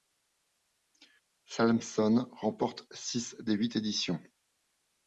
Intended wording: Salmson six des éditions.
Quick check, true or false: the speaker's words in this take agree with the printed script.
false